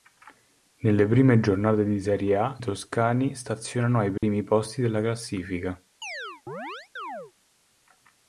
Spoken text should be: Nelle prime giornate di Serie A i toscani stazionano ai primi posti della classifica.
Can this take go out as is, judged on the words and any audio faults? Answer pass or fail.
fail